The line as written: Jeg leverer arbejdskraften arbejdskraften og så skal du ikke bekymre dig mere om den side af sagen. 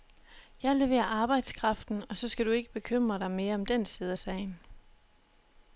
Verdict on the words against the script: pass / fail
fail